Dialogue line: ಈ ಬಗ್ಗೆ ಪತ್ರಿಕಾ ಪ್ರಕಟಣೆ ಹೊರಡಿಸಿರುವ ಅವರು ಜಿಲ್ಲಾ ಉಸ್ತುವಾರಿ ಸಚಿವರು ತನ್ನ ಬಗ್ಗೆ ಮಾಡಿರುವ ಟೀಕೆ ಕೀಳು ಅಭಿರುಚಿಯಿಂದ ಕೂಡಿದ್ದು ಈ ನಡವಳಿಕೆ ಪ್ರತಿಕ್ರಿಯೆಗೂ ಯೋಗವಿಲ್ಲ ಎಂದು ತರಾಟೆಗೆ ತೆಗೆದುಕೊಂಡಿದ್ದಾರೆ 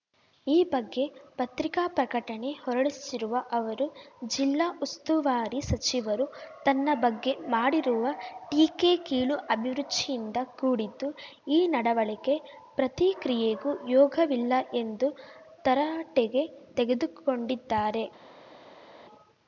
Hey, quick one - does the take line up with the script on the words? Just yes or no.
yes